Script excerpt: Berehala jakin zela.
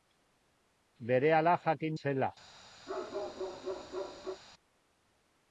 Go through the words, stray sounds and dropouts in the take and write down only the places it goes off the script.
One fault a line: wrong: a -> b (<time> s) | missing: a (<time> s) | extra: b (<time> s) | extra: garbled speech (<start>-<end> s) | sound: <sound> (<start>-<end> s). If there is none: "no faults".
sound: bark (2.9-4.4 s)